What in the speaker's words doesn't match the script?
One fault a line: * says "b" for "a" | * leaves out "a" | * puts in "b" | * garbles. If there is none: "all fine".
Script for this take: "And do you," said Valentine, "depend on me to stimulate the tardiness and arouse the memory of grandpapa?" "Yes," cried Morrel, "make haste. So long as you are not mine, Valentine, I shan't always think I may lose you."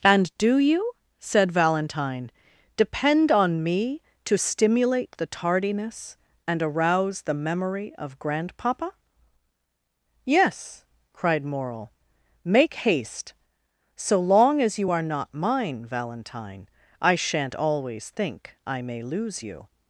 all fine